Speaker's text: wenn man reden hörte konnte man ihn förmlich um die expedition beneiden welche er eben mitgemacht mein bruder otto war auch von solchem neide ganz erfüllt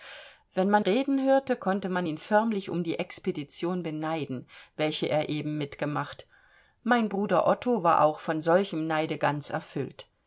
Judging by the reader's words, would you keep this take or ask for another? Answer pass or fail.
pass